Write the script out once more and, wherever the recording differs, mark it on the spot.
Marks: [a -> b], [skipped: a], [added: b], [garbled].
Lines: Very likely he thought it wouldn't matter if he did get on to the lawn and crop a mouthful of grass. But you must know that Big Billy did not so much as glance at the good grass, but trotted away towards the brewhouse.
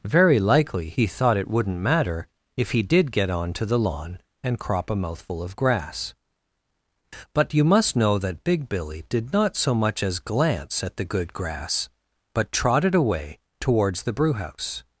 Very likely he thought it wouldn't matter if he did get on to the lawn and crop a mouthful of grass. But you must know that Big Billy did not so much as glance at the good grass, but trotted away towards the brewhouse.